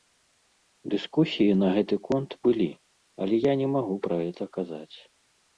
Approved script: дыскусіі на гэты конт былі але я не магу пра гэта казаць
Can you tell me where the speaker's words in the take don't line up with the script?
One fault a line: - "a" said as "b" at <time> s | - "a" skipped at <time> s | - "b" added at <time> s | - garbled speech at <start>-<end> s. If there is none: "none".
none